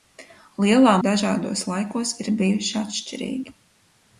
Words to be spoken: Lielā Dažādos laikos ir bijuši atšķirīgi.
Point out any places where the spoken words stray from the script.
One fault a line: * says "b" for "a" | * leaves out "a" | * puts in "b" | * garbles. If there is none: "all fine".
all fine